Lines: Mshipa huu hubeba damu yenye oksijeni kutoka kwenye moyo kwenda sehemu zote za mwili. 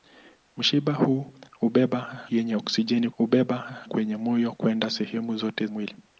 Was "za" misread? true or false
true